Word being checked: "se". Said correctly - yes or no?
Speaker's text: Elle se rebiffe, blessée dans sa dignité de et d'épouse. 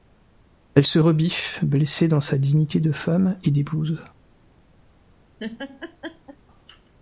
yes